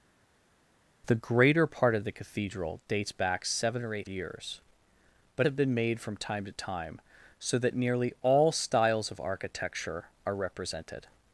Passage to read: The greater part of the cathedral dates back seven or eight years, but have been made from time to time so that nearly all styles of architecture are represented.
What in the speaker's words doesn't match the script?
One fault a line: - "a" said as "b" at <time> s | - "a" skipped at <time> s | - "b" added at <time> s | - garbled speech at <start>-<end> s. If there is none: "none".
none